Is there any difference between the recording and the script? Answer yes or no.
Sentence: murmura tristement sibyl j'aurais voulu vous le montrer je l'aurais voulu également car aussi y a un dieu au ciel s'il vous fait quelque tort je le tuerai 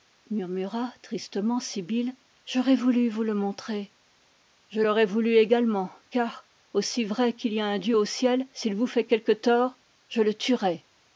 yes